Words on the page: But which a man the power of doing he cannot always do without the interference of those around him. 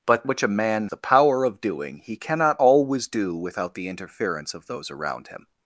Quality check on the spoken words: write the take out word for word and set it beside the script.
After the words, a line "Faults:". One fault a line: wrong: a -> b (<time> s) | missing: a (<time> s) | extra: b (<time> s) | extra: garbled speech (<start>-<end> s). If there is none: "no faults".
But which a man the power of doing he cannot always do without the interference of those around him.
Faults:
no faults